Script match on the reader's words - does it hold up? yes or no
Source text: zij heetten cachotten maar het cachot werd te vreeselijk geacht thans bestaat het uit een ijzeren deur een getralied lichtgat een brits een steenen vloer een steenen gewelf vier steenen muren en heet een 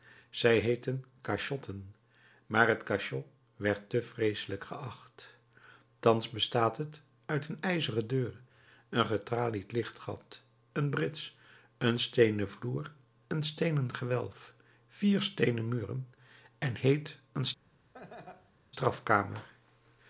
yes